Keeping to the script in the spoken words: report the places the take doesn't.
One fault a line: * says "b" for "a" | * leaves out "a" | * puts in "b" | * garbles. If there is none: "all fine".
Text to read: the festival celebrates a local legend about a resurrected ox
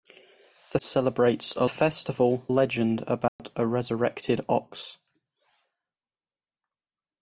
* leaves out "festival"
* says "festival" for "local"